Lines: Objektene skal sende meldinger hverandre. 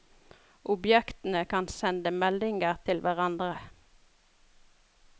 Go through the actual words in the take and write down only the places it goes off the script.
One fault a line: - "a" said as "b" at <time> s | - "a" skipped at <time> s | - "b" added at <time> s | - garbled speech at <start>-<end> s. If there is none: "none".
- "skal" said as "kan" at 1.5 s
- "til" added at 2.9 s